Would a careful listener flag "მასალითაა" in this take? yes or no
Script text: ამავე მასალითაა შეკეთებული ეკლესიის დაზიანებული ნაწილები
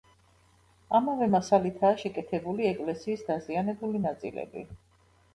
no